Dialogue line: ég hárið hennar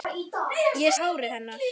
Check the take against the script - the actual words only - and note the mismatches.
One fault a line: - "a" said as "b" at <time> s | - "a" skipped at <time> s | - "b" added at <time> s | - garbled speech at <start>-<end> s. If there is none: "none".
none